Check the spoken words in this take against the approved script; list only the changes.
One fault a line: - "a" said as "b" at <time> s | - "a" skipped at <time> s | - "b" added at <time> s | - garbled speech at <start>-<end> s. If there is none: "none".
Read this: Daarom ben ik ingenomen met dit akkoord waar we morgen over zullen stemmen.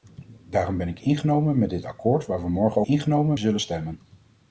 - "over" said as "ingenomen" at 2.8 s